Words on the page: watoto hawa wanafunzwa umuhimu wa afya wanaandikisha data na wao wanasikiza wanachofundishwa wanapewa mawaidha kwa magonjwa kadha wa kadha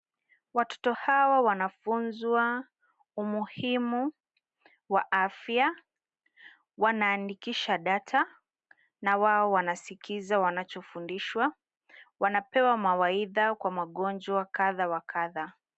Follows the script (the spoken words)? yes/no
yes